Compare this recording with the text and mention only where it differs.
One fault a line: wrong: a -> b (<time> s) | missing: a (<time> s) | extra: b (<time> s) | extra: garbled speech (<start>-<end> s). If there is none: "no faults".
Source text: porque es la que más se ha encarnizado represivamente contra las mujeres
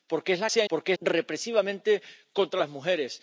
missing: que más (0.5 s)
wrong: encarnizado -> porque (0.7 s)